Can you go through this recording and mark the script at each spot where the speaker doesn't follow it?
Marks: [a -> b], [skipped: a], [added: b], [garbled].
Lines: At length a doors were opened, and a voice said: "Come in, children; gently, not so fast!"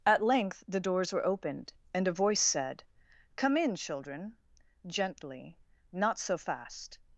At length [a -> the] doors were opened, and a voice said: "Come in, children; gently, not so fast!"